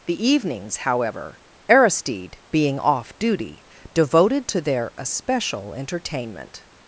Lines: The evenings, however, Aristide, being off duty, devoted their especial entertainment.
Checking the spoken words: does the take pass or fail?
fail